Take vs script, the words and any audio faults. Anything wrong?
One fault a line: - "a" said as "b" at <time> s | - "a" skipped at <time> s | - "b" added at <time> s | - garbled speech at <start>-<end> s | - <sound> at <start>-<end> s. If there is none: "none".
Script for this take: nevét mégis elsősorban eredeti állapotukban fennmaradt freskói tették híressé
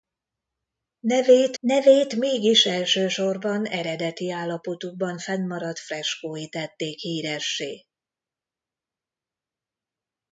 - "nevét" added at 1.6 s